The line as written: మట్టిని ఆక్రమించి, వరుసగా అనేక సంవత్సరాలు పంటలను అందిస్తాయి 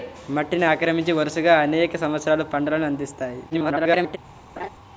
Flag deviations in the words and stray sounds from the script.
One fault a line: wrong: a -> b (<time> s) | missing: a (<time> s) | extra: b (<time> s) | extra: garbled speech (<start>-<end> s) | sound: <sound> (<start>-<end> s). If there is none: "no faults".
extra: garbled speech (3.5-4.2 s)
sound: laugh (4.6-4.7 s)